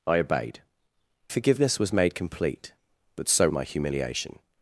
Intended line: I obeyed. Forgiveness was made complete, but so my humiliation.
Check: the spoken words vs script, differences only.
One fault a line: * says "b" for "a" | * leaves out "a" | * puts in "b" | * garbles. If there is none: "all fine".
all fine